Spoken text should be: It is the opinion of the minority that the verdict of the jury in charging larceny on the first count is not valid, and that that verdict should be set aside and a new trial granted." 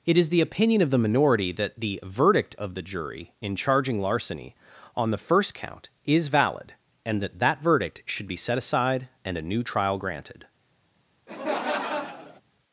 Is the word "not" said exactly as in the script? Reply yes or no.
no